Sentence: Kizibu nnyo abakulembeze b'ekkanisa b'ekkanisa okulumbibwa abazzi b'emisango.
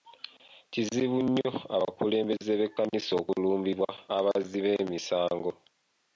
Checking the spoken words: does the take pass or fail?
fail